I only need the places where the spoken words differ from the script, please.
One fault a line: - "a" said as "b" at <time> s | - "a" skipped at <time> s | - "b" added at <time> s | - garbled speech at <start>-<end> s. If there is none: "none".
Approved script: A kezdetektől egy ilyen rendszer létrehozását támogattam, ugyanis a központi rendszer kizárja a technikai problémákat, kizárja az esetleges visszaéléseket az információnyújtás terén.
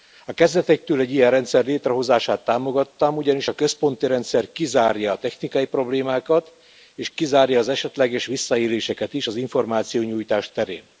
- "és" added at 6.9 s
- "is" added at 9.1 s